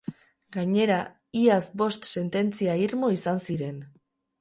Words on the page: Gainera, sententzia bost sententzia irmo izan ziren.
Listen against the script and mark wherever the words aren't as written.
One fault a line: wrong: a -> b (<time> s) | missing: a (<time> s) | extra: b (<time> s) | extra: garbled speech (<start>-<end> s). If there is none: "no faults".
wrong: sententzia -> iaz (1.4 s)